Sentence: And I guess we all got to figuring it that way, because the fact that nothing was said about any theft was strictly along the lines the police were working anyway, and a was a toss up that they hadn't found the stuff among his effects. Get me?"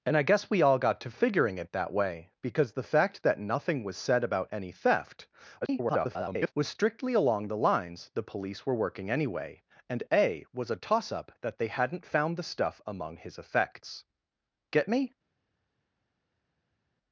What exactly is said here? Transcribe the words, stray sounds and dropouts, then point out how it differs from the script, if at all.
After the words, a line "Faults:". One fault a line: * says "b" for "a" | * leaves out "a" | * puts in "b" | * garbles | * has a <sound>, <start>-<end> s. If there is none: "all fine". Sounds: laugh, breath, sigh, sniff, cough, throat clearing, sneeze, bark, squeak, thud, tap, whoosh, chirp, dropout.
And I guess we all got to figuring it that way, because the fact that nothing was said about any theft [garbled] was strictly along the lines the police were working anyway, and a was a toss up that they hadn't found the stuff among his effects. Get me?"
Faults:
* garbles